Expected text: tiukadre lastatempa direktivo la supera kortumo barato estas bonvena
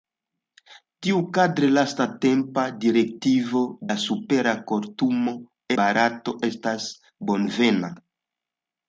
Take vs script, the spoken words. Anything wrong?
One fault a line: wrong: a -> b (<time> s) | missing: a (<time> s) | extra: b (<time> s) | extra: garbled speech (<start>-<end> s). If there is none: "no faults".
no faults